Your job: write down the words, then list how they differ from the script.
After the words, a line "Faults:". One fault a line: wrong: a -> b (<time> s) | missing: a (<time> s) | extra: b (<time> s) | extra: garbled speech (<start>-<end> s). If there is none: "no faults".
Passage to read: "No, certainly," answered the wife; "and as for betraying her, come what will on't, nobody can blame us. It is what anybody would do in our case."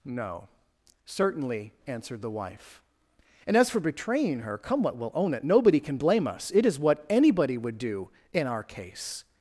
"No, certainly," answered the wife; "and as for betraying her, come what will own it, nobody can blame us. It is what anybody would do in our case."
Faults:
wrong: on't -> own it (5.1 s)